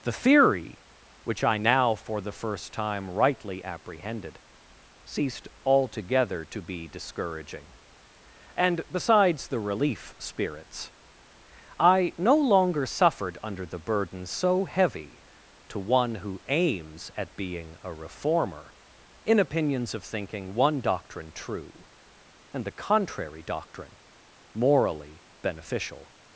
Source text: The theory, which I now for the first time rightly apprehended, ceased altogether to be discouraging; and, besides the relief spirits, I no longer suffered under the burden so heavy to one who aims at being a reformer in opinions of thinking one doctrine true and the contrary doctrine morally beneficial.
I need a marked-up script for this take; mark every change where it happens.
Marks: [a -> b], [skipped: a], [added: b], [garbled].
The theory, which I now for the first time rightly apprehended, ceased altogether to be discouraging; and, besides the relief spirits, I no longer suffered under the burden so heavy to one who aims at being a reformer in opinions of thinking one doctrine true and the contrary doctrine morally beneficial.